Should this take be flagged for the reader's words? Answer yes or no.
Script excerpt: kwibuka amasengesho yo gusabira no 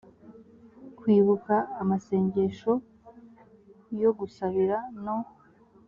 no